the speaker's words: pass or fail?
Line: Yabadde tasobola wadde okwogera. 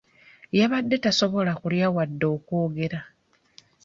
fail